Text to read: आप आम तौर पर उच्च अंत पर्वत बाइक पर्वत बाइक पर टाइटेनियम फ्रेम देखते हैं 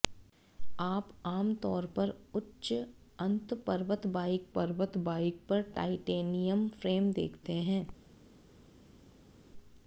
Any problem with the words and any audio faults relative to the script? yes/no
no